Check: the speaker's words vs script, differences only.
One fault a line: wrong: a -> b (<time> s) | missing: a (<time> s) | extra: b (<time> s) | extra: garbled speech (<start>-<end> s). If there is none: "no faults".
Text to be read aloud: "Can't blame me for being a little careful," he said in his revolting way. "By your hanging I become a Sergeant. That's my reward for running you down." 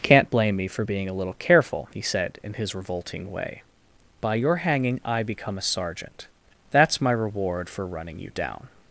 no faults